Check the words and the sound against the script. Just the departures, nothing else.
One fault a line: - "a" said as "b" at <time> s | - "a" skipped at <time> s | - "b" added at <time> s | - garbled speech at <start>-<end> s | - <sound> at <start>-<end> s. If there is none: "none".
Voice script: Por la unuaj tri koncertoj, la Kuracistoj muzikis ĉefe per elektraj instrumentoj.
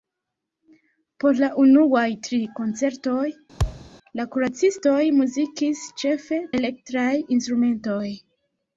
- thud at 3.6-3.9 s
- "per" skipped at 6.4 s